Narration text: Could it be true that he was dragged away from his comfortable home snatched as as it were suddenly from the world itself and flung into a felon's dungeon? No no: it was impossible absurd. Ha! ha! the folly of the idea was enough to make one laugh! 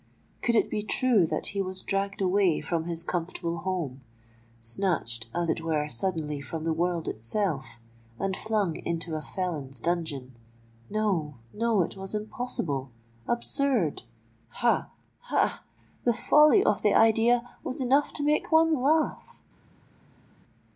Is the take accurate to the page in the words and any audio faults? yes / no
no